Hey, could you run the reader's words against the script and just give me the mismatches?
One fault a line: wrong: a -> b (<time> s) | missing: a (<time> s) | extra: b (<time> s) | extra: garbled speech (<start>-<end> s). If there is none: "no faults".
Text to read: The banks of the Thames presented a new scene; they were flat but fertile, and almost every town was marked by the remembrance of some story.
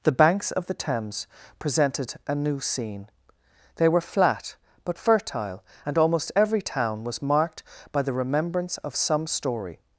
no faults